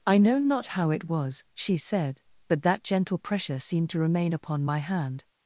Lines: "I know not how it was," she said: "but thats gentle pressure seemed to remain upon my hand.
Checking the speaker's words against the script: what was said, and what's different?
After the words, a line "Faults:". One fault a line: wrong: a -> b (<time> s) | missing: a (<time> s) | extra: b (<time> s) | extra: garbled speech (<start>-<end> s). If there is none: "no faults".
"I know not how it was," she said: "but that gentle pressure seemed to remain upon my hand.
Faults:
wrong: thats -> that (2.6 s)